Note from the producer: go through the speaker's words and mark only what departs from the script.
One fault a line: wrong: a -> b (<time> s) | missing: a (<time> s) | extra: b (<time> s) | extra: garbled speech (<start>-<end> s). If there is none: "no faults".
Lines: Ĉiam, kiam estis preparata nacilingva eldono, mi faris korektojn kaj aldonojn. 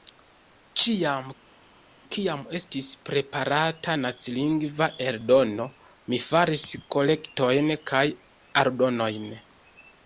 no faults